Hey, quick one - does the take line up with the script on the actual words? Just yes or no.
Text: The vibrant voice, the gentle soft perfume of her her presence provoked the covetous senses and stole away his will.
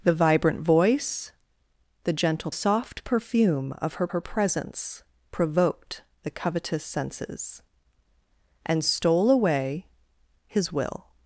yes